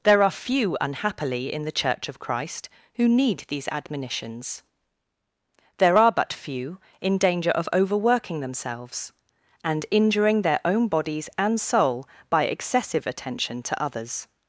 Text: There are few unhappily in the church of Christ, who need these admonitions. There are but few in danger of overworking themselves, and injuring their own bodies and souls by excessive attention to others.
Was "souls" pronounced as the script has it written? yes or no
no